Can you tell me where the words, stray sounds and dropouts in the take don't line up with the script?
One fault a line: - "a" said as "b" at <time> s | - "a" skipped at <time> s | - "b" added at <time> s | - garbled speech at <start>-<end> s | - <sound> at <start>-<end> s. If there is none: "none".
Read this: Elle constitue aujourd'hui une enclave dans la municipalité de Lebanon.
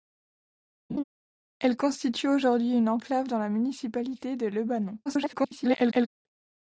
- laugh at 0.9-1.0 s
- garbled speech at 5.0-6.1 s